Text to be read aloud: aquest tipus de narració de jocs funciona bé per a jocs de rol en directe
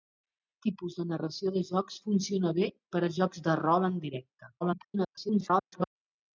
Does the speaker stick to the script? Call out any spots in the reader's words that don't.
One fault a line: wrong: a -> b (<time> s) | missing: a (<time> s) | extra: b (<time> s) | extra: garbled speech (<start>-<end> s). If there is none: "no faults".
extra: garbled speech (4.6-6.0 s)